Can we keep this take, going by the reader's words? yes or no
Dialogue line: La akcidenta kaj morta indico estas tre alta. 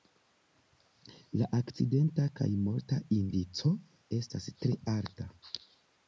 yes